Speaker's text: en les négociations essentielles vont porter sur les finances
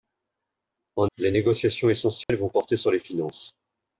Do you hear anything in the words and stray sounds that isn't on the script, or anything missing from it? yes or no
yes